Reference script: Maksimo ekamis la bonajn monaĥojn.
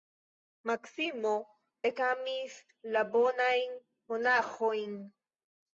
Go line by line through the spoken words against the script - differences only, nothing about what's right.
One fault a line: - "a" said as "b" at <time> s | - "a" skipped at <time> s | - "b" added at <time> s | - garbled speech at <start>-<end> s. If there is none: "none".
none